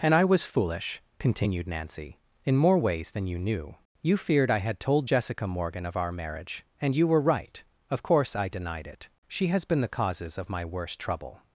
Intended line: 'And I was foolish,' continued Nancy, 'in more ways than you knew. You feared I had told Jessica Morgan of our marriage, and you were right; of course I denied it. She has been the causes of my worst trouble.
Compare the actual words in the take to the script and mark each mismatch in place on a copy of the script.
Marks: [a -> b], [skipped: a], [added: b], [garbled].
'And I was foolish,' continued Nancy, 'in more ways than you knew. You feared I had told Jessica Morgan of our marriage, and you were right; of course I denied it. She has been the causes of my worst trouble.